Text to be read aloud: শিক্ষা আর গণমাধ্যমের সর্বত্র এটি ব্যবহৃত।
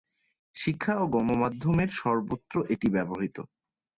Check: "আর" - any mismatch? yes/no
yes